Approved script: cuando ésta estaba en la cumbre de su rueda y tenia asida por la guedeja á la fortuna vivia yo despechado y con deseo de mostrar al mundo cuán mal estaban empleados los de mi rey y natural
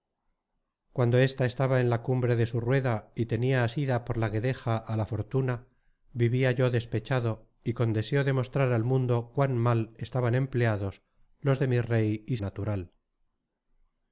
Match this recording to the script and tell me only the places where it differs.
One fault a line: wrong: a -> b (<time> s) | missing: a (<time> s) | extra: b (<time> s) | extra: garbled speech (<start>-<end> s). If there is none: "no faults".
no faults